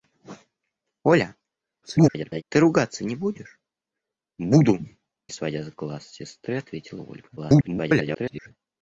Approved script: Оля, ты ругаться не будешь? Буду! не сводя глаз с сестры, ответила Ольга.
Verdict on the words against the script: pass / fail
fail